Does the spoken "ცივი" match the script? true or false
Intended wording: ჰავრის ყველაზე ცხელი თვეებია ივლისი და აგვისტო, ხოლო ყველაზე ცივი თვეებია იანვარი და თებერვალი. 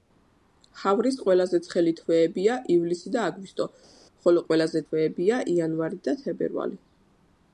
false